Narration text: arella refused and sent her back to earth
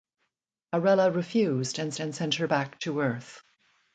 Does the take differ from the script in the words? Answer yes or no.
yes